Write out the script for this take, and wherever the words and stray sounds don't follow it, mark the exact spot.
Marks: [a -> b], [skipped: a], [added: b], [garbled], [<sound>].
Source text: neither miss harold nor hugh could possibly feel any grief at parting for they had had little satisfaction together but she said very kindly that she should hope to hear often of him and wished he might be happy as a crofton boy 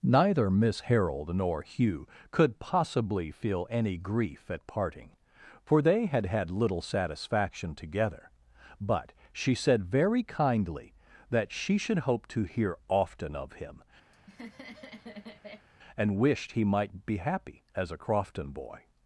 neither miss harold nor hugh could possibly feel any grief at parting for they had had little satisfaction together but she said very kindly that she should hope to hear often of him [laugh] and wished he might be happy as a crofton boy